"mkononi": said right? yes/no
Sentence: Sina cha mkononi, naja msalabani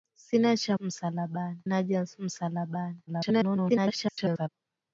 no